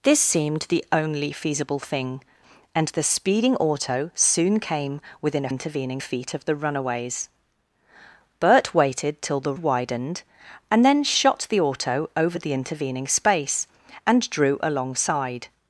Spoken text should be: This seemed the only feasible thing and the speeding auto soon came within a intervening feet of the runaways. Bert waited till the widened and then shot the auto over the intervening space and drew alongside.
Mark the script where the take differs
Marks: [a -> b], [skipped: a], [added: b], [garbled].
This seemed the only feasible thing and the speeding auto soon came within a intervening feet of the runaways. Bert waited till the widened and then shot the auto over the intervening space and drew alongside.